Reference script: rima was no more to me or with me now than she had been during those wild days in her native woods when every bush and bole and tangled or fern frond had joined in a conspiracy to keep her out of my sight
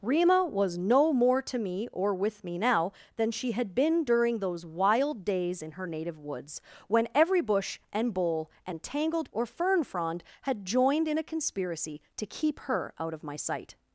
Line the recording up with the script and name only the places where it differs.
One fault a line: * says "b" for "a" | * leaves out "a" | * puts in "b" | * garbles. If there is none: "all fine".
all fine